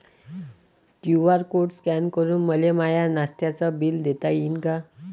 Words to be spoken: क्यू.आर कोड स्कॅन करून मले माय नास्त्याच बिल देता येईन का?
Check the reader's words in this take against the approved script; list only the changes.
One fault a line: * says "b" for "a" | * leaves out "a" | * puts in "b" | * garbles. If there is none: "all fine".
all fine